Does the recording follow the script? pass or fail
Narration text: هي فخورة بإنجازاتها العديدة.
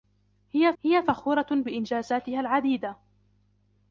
fail